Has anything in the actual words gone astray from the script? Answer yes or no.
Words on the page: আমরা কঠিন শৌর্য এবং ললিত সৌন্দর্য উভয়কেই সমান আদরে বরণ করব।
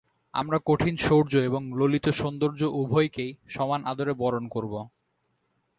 no